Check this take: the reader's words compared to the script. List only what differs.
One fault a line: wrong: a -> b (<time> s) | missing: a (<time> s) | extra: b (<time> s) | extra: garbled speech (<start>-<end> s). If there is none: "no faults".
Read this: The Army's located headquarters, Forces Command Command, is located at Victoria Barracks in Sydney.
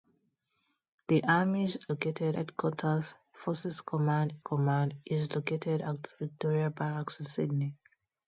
no faults